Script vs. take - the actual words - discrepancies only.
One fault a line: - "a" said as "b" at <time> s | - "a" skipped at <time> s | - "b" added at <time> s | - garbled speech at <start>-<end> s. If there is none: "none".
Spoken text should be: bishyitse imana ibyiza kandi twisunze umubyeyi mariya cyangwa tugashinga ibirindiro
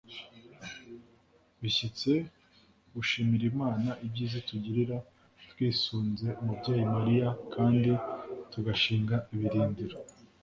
- "gushimira" added at 2.9 s
- "kandi" said as "itugirira" at 4.4 s
- "cyangwa" said as "kandi" at 7.5 s